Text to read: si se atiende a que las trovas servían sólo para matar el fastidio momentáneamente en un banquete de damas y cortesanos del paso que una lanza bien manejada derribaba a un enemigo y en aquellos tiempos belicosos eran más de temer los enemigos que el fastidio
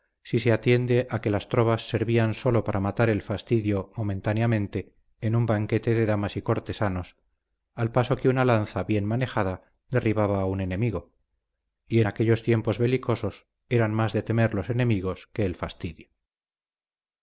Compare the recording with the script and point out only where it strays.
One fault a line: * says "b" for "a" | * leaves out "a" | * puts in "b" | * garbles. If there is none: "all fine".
* says "al" for "del"